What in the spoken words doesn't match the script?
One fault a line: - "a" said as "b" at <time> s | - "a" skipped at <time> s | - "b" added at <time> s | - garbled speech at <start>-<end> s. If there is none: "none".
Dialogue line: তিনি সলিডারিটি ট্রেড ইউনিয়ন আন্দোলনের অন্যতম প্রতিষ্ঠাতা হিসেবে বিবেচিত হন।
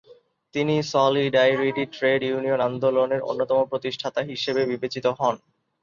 none